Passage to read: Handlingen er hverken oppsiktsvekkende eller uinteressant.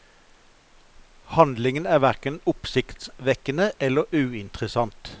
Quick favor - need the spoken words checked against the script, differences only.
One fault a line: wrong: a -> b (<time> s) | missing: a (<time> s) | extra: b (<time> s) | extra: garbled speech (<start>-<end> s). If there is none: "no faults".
no faults